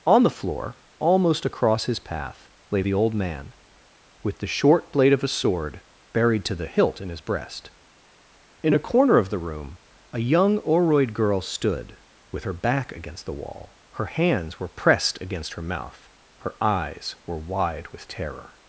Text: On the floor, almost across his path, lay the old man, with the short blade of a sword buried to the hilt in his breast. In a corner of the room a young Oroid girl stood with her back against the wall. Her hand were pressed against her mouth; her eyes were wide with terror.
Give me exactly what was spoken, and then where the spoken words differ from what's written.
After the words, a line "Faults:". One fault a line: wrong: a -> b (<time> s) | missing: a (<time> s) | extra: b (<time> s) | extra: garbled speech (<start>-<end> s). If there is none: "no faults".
On the floor, almost across his path, lay the old man, with the short blade of a sword buried to the hilt in his breast. In a corner of the room a young Oroid girl stood with her back against the wall. Her hands were pressed against her mouth; her eyes were wide with terror.
Faults:
wrong: hand -> hands (14.1 s)